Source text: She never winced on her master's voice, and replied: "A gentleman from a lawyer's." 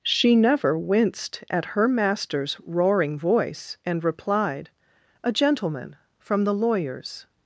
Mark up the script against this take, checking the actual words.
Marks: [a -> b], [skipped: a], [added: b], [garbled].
She never winced [on -> at] her master's [added: roaring] voice, and replied: "A gentleman from [a -> the] lawyer's."